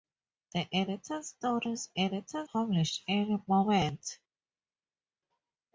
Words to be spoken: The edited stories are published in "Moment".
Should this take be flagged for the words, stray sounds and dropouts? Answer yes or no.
yes